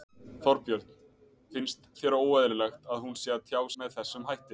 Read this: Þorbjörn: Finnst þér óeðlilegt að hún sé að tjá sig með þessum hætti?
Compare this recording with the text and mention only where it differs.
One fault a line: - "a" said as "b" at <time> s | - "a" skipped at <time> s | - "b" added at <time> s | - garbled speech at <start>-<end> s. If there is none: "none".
- "sig" skipped at 3.6 s